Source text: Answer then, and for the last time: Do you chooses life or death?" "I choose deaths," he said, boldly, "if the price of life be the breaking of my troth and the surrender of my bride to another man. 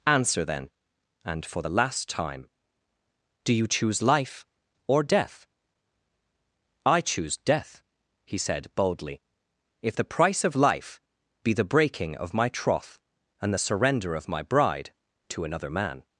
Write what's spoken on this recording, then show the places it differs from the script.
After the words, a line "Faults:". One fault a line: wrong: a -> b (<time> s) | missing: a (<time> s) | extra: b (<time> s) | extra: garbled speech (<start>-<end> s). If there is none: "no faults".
Answer then, and for the last time: Do you choose life or death?" "I choose death," he said, boldly, "if the price of life be the breaking of my troth and the surrender of my bride to another man.
Faults:
wrong: chooses -> choose (3.7 s)
wrong: deaths -> death (7.4 s)